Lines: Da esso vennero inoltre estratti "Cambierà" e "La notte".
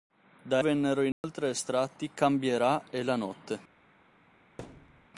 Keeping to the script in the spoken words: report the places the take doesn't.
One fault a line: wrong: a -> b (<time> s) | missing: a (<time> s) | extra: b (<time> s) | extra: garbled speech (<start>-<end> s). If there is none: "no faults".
missing: esso (0.6 s)